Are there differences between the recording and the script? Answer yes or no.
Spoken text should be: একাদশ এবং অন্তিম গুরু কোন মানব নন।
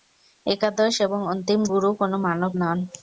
no